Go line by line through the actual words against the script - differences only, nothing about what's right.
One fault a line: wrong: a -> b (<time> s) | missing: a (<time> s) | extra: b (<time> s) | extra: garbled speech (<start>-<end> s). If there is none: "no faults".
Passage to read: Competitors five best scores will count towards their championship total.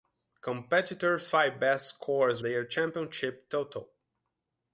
missing: will count towards (2.4 s)